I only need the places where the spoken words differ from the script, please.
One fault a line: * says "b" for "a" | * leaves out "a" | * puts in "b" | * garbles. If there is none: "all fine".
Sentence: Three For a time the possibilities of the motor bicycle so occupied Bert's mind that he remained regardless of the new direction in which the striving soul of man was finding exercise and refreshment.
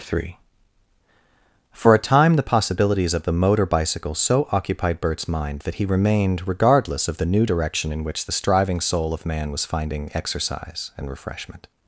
all fine